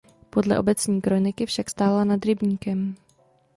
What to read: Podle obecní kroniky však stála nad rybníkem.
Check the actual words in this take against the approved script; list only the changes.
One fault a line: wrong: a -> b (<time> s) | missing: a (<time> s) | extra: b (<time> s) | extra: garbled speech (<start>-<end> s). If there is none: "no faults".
no faults